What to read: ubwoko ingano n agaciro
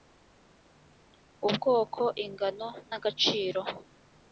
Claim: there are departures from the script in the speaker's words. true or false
false